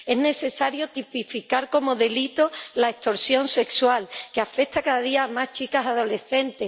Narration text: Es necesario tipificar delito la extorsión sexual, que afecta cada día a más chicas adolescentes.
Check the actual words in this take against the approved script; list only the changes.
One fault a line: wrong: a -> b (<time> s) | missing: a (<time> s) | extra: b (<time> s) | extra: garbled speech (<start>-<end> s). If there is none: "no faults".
extra: como (1.7 s)